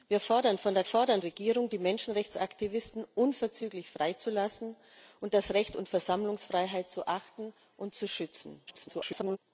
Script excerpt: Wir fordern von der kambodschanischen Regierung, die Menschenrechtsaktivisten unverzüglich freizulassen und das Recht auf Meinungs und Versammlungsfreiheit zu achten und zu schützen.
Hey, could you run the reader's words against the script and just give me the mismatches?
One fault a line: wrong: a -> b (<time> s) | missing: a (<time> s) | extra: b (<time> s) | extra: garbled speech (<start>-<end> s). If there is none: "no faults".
wrong: kambodschanischen -> fordern (0.8 s)
missing: auf Meinungs (5.8 s)
extra: garbled speech (8.7-9.4 s)